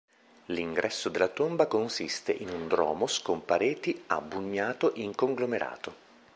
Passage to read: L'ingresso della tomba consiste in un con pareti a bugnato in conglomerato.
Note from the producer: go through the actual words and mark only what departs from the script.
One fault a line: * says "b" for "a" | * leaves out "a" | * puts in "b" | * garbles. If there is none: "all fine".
* puts in "dromos"